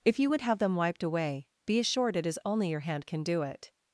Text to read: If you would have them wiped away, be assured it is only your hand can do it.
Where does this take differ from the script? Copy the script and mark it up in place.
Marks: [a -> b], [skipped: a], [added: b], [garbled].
If you would have them wiped away, be assured it is only your hand can do it.